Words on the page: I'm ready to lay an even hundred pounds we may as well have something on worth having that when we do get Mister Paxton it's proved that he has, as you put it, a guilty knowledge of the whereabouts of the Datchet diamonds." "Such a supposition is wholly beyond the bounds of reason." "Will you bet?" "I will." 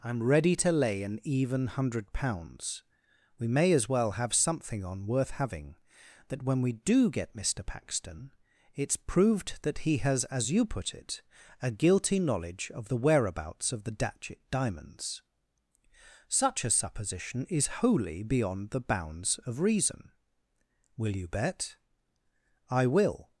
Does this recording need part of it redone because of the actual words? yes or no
no